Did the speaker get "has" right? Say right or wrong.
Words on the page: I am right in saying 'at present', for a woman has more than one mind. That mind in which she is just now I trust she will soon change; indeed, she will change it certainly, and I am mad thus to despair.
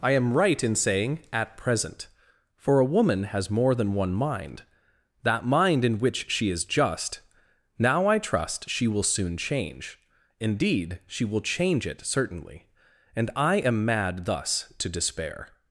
right